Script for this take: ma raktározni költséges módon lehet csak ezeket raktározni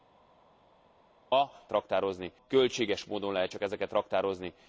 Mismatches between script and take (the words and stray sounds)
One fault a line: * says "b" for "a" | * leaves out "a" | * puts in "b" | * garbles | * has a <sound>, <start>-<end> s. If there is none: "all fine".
all fine